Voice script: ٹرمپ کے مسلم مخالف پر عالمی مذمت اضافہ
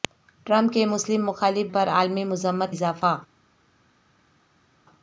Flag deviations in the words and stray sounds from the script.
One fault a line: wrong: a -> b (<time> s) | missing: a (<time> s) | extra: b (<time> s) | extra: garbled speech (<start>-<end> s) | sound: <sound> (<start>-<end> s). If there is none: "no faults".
no faults